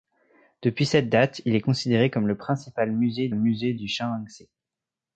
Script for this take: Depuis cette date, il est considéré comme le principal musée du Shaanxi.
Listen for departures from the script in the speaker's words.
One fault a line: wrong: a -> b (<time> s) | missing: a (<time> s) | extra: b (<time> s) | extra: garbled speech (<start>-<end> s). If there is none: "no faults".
extra: musée (3.3 s)